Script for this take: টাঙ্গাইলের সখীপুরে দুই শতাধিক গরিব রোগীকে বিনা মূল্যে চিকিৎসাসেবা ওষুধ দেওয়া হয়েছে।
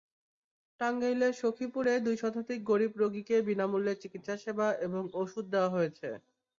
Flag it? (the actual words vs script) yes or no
yes